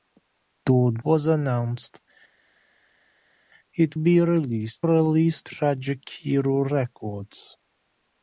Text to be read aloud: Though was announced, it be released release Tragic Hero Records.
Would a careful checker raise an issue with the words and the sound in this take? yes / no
no